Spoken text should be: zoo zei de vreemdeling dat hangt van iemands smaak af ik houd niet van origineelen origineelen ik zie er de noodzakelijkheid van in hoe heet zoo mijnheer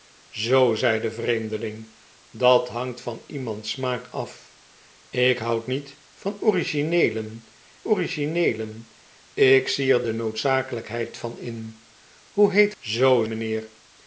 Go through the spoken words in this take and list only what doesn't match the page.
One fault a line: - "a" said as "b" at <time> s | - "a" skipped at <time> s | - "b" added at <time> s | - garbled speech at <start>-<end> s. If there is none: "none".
none